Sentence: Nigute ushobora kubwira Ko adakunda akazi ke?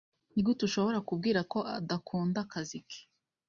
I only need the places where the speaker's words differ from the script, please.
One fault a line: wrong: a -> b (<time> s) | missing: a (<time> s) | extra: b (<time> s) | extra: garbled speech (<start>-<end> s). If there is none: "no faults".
no faults